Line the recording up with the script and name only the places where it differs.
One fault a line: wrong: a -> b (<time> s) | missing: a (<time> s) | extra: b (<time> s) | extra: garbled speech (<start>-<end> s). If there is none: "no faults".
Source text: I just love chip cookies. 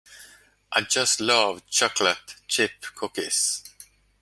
extra: chocolate (1.7 s)